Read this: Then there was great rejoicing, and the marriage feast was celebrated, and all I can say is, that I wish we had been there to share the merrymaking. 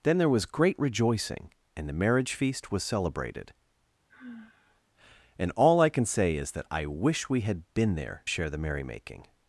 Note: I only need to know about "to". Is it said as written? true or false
false